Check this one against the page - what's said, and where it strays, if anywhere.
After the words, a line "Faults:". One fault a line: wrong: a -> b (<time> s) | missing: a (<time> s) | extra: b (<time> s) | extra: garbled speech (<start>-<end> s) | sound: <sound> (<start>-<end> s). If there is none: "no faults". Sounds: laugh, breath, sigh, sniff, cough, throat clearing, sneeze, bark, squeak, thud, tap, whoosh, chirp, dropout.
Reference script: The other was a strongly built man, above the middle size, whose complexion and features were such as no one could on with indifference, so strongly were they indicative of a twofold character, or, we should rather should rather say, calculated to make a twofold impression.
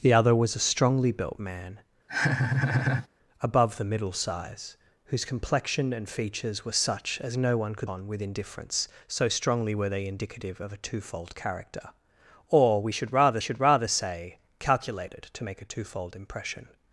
The other was a strongly built man, above the middle size, whose complexion and features were such as no one could on with indifference, so strongly were they indicative of a twofold character, or, we should rather should rather say, calculated to make a twofold impression.
Faults:
sound: laugh (2.1-3.1 s)